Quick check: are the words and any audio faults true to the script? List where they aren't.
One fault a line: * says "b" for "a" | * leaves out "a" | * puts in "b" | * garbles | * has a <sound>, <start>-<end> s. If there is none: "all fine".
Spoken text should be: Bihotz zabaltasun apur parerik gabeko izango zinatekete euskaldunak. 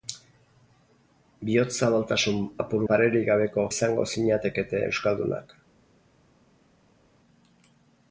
all fine